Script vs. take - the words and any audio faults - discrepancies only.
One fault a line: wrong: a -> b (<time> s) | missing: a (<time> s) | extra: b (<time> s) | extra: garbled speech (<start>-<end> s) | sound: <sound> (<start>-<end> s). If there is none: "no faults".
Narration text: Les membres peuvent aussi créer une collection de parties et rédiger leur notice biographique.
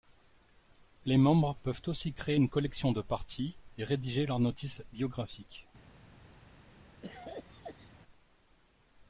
sound: cough (7.0-8.0 s)